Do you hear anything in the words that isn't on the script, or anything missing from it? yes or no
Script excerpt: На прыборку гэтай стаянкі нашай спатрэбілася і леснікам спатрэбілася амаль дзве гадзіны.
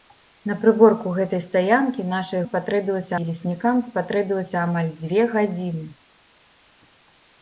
no